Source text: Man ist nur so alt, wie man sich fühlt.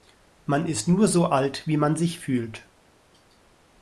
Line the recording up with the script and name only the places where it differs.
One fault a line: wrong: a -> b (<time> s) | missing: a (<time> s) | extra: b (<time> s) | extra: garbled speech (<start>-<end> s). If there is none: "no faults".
no faults